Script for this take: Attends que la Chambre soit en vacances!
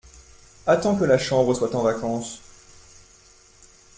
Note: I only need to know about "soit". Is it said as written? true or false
true